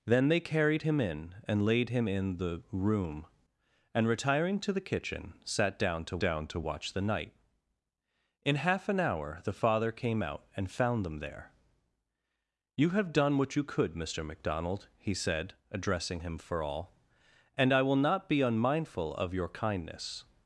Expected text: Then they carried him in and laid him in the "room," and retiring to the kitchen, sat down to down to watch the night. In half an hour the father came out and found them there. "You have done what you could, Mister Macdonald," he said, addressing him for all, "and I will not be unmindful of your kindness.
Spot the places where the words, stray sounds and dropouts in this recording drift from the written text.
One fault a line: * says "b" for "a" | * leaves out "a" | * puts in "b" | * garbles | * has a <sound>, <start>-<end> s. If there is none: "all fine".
all fine